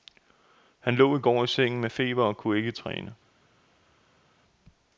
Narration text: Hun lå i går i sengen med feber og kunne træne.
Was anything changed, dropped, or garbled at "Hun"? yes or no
yes